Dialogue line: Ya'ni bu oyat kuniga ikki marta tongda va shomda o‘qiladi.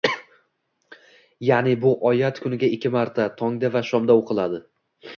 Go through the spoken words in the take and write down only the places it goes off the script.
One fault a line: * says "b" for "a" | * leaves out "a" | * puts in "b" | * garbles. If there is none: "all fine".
all fine